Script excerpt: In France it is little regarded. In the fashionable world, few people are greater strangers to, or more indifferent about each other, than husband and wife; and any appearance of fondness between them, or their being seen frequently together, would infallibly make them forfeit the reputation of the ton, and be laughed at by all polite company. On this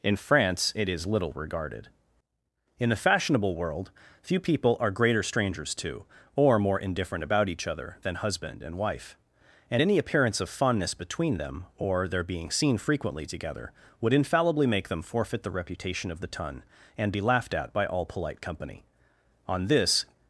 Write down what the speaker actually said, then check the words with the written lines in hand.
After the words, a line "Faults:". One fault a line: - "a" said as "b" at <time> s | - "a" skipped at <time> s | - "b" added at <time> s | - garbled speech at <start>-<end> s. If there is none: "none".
In France it is little regarded. In the fashionable world, few people are greater strangers to, or more indifferent about each other, than husband and wife; and any appearance of fondness between them, or their being seen frequently together, would infallibly make them forfeit the reputation of the ton, and be laughed at by all polite company. On this
Faults:
none